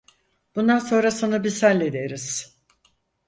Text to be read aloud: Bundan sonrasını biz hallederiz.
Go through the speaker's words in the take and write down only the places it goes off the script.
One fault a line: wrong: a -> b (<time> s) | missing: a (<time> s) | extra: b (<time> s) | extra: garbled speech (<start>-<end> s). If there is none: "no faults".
no faults